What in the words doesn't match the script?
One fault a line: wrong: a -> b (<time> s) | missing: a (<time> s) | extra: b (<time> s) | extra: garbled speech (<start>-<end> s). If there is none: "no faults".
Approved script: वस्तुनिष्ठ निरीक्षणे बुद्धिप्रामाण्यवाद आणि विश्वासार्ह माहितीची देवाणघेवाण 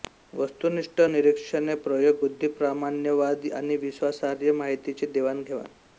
extra: प्रयोग (1.9 s)